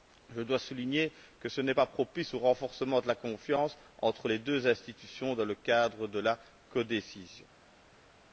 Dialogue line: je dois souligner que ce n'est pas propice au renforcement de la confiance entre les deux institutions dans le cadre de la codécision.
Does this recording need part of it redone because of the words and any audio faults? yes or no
no